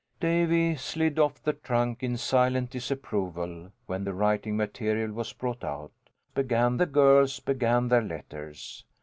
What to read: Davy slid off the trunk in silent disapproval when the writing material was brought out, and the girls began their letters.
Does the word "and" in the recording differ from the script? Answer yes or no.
yes